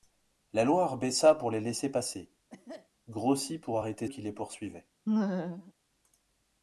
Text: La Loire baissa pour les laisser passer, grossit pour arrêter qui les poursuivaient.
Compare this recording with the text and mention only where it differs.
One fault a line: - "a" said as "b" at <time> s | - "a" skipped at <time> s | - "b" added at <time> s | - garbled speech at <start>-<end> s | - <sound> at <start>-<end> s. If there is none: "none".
- cough at 2.5-2.9 s
- laugh at 5.1-5.7 s